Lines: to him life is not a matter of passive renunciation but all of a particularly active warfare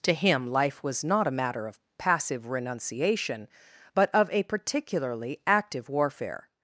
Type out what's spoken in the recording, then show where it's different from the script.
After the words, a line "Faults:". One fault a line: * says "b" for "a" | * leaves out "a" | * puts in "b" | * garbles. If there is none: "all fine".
to him life was not a matter of passive renunciation but of a particularly active warfare
Faults:
* says "was" for "is"
* leaves out "all"